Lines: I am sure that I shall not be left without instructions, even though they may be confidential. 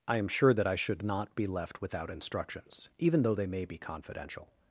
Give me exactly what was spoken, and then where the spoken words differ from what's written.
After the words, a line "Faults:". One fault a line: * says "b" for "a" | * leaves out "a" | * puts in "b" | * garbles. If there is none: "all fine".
I am sure that I should not be left without instructions, even though they may be confidential.
Faults:
* says "should" for "shall"